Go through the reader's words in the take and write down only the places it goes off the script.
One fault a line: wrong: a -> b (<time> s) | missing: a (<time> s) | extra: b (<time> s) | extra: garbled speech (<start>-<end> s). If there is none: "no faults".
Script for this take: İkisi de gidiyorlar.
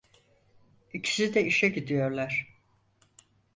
extra: işe (1.4 s)